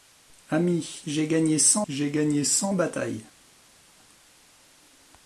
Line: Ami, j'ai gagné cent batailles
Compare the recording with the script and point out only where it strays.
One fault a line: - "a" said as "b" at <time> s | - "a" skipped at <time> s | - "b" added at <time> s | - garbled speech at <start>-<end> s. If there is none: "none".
- "j'ai gagné cent" added at 1.9 s